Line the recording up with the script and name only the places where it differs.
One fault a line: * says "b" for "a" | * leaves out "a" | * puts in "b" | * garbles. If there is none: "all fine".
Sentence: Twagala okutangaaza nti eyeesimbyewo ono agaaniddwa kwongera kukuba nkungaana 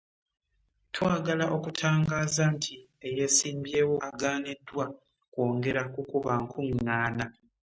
* leaves out "ono"